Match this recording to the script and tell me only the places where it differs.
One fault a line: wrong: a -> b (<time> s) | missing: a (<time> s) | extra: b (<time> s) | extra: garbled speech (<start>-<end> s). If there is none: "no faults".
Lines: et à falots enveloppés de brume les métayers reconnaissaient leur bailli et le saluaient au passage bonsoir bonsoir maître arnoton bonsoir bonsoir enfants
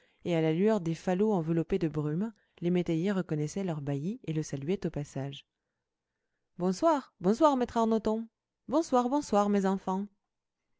extra: la lueur des (0.4 s)
extra: mes (9.5 s)